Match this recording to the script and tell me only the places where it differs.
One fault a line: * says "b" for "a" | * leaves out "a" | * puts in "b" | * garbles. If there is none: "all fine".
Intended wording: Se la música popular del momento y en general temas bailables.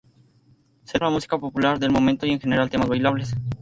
all fine